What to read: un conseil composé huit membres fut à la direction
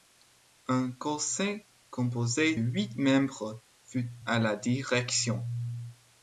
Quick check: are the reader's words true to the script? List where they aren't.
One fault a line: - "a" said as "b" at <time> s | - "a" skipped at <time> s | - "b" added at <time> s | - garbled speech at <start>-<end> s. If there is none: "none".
none